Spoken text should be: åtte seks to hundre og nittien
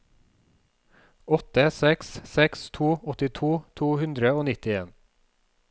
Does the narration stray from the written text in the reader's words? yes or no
yes